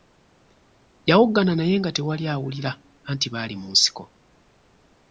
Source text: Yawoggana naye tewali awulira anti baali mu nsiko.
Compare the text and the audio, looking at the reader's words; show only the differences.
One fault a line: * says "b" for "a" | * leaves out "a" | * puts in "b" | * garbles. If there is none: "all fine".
* puts in "nga"